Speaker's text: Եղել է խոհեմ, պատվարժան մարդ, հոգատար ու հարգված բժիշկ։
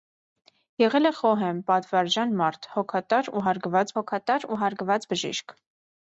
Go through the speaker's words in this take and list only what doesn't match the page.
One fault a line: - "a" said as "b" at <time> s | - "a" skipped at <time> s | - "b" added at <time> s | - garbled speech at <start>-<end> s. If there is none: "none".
- "հոգատար ու հարգված" added at 4.0 s